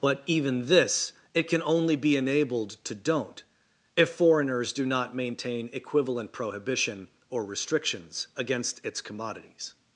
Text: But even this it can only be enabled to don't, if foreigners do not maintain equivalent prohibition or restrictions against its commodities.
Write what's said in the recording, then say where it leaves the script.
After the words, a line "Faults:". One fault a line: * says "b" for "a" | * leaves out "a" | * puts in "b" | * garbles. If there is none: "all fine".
But even this it can only be enabled to don't, if foreigners do not maintain equivalent prohibition or restrictions against its commodities.
Faults:
all fine